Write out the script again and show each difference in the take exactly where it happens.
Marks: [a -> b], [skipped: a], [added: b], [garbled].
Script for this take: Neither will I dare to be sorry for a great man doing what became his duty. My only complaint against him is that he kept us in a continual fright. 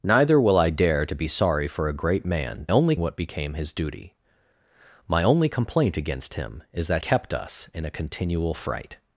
Neither will I dare to be sorry for a great man [doing -> only] what became his duty. My only complaint against him is that [skipped: he] kept us in a continual fright.